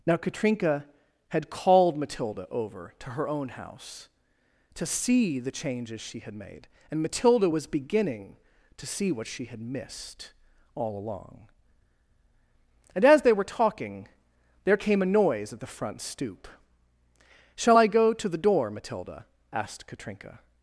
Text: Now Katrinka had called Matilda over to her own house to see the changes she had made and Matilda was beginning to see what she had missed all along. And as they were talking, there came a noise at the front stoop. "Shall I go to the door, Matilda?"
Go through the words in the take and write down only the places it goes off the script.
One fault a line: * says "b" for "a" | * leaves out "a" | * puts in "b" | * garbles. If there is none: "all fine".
* puts in "asked Katrinka"